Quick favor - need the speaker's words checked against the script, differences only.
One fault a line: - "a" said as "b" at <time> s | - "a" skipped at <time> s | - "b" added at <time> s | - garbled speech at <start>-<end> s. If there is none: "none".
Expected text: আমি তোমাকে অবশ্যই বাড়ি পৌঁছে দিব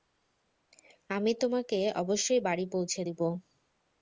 none